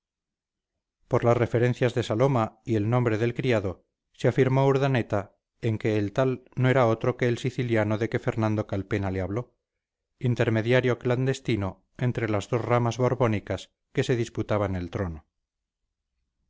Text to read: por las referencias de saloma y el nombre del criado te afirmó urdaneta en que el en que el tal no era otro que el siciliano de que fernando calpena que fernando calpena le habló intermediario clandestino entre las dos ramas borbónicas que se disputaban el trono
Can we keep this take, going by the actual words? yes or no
no